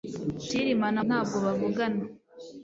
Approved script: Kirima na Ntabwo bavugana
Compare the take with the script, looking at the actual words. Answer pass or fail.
pass